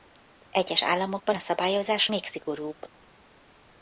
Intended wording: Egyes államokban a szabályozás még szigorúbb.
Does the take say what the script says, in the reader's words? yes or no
yes